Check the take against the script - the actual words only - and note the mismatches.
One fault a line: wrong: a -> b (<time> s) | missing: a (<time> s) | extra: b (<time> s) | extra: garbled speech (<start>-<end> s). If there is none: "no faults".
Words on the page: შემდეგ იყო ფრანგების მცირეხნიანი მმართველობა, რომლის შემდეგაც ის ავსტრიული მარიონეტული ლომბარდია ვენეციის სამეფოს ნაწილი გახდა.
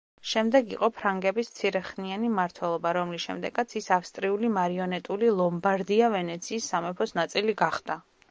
no faults